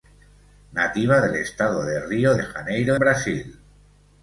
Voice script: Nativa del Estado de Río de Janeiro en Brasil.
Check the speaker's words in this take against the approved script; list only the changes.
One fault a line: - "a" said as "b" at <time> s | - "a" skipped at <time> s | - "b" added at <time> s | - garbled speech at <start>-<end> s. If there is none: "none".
- "en" skipped at 2.9 s